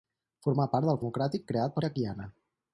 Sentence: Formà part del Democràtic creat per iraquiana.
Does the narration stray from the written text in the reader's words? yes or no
no